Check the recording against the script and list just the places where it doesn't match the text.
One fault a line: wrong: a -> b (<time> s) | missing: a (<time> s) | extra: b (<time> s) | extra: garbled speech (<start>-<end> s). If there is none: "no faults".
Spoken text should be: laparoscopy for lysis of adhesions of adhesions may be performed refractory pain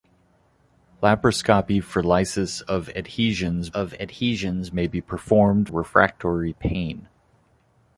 no faults